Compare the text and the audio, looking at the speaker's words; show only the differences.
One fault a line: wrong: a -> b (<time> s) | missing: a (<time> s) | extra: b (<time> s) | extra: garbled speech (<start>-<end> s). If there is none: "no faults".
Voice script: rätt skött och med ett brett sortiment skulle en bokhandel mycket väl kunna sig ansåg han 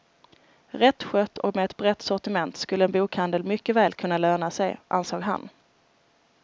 extra: löna (4.2 s)